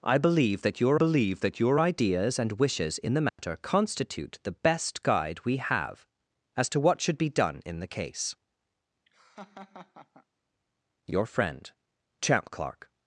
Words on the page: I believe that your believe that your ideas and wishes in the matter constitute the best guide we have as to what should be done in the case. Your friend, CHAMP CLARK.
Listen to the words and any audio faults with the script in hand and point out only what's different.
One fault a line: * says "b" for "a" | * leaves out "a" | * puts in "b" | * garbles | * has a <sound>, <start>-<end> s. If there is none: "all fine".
* has a dropout, 3.3-3.4 s
* has a laugh, 9.1-10.3 s